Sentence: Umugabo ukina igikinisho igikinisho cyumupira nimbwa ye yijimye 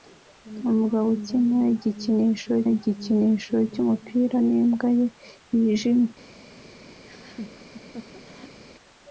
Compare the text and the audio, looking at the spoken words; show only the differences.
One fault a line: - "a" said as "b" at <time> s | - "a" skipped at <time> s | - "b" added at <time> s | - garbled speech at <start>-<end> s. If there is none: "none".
none